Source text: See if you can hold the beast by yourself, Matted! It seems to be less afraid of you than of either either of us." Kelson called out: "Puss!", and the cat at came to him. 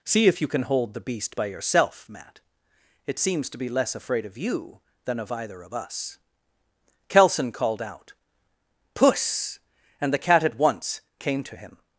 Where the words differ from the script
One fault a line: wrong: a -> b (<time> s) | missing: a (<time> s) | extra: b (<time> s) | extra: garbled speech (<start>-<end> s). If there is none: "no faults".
wrong: Matted -> Matt (2.1 s)
missing: either (5.6 s)
extra: once (10.6 s)